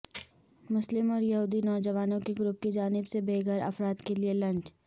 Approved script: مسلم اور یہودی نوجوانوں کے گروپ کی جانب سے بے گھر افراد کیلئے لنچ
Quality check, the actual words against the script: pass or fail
pass